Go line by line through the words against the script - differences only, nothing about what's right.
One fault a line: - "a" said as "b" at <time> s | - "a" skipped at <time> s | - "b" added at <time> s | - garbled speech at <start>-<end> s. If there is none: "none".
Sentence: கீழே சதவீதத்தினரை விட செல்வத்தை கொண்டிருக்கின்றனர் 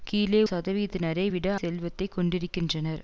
none